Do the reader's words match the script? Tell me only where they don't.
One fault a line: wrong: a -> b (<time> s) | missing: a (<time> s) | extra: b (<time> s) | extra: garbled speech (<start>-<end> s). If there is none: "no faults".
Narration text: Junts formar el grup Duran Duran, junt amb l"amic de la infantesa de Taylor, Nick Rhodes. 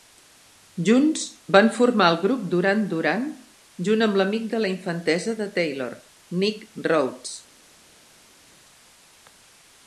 extra: van (1.6 s)